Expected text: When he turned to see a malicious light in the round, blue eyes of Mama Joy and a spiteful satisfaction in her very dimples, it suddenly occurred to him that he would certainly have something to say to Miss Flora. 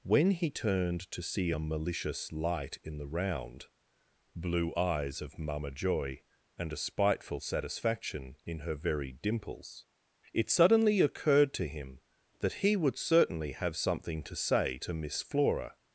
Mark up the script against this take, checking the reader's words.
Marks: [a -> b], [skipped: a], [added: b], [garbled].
When he turned to see a malicious light in the round, blue eyes of Mama Joy and a spiteful satisfaction in her very dimples, it suddenly occurred to him that he would certainly have something to say to Miss Flora.